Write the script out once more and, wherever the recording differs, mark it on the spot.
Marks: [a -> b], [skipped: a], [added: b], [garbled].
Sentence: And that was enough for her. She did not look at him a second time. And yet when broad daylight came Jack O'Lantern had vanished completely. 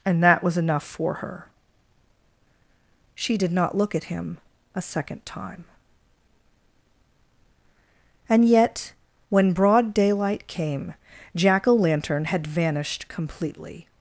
And that was enough for her. She did not look at him a second time. And yet when broad daylight came Jack O'Lantern had vanished completely.